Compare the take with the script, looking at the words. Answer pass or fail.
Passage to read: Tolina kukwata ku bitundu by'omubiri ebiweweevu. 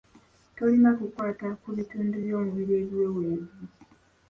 pass